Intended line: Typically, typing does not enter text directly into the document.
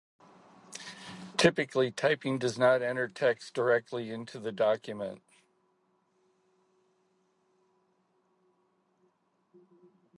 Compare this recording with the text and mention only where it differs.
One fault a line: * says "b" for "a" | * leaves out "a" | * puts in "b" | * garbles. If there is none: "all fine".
all fine